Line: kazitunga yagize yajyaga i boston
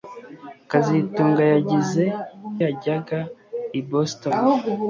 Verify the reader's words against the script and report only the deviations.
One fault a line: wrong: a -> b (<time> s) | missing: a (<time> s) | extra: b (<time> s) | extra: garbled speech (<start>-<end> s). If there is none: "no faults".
no faults